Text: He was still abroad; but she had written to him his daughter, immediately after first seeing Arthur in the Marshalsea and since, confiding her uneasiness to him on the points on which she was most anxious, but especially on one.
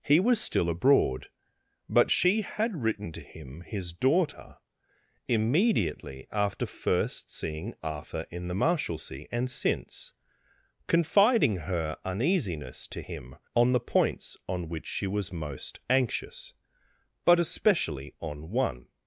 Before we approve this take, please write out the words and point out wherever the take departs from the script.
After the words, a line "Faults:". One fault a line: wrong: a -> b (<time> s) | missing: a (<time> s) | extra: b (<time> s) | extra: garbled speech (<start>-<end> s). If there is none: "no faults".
He was still abroad; but she had written to him his daughter, immediately after first seeing Arthur in the Marshalsea and since, confiding her uneasiness to him on the points on which she was most anxious, but especially on one.
Faults:
no faults